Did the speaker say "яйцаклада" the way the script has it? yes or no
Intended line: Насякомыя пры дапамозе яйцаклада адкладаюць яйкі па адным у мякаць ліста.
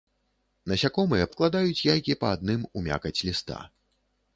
no